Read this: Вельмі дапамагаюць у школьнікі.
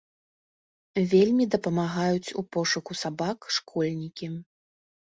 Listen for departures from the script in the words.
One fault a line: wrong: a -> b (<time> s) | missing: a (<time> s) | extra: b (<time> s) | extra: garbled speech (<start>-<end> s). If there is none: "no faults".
extra: пошуку сабак (2.6 s)